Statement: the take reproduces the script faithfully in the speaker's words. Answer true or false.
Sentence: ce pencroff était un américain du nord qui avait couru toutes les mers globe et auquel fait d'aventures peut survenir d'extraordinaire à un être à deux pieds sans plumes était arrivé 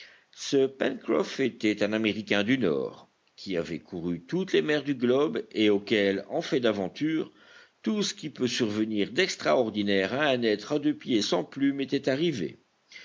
false